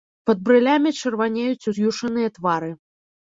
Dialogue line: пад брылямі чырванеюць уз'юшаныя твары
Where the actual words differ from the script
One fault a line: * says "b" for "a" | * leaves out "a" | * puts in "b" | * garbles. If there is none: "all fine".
all fine